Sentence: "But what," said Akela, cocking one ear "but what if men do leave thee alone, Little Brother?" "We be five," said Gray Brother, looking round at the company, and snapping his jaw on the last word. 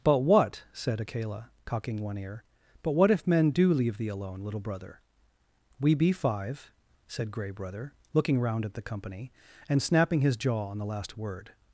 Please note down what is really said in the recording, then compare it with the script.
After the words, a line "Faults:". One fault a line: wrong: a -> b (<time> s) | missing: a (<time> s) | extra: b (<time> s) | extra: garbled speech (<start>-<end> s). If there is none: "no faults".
"But what," said Akela, cocking one ear "but what if men do leave thee alone, Little Brother?" "We be five," said Gray Brother, looking round at the company, and snapping his jaw on the last word.
Faults:
no faults